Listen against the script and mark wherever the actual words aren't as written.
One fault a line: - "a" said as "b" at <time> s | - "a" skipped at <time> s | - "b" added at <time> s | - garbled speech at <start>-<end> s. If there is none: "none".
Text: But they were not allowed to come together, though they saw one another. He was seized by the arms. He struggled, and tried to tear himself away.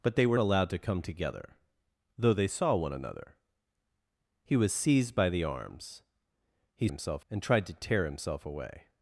- "not" skipped at 0.4 s
- "struggled" said as "himself" at 6.9 s